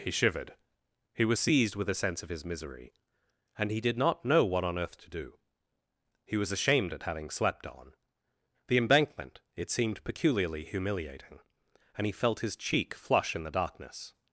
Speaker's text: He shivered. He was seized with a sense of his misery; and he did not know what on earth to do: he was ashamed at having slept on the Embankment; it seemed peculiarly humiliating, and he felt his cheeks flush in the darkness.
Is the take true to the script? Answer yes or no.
no